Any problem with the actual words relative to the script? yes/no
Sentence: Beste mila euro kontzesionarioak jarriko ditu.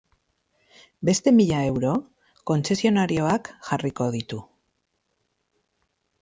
no